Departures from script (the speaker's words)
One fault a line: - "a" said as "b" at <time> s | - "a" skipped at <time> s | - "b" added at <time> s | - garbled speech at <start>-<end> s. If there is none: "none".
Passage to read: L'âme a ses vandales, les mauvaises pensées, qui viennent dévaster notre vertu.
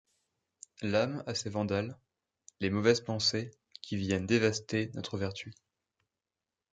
none